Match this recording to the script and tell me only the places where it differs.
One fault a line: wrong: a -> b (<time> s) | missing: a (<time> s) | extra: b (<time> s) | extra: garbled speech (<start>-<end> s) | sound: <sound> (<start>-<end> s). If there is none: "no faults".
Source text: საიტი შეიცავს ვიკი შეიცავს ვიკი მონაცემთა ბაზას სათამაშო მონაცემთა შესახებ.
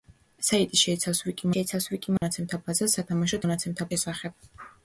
sound: dropout (2.2-2.2 s)